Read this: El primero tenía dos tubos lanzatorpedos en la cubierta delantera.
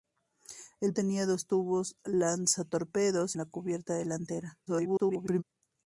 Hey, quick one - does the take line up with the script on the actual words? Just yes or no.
no